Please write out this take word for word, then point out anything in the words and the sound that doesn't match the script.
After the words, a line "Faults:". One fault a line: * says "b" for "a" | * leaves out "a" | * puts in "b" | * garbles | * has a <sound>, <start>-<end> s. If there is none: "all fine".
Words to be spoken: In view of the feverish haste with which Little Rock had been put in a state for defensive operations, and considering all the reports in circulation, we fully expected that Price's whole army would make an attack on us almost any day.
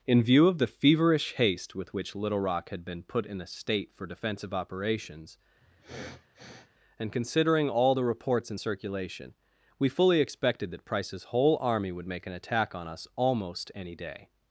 In view of the feverish haste with which Little Rock had been put in a state for defensive operations, and considering all the reports in circulation, we fully expected that Price's whole army would make an attack on us almost any day.
Faults:
* has a sniff, 5.6-6.7 s